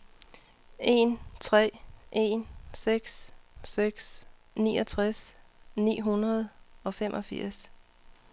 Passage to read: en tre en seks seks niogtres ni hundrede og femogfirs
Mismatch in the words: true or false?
false